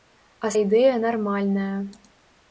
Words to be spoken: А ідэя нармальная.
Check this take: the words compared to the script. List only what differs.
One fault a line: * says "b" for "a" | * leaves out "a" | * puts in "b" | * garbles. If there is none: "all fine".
all fine